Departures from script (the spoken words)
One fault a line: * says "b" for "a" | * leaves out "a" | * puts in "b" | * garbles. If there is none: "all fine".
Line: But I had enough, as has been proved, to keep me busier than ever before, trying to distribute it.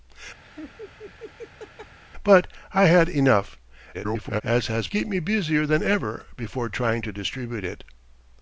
* garbles
* leaves out "been proved to"